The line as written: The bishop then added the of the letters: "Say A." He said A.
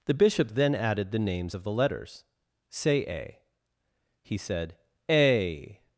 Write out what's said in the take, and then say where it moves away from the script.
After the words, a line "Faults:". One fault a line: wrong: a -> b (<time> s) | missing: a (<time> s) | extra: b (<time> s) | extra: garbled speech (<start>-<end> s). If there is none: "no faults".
The bishop then added the names of the letters: "Say A." He said A.
Faults:
extra: names (1.2 s)